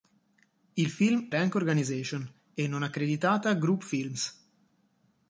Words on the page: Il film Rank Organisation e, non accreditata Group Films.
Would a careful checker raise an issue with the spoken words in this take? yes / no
no